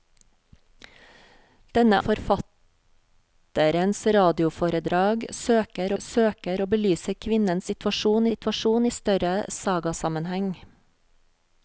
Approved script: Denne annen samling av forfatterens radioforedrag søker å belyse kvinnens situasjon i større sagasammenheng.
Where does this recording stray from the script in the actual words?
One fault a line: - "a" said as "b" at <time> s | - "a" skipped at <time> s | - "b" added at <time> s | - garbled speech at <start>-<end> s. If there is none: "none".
- "annen samling av" skipped at 2.0 s
- "søker" added at 6.0 s
- "situasjon" added at 8.3 s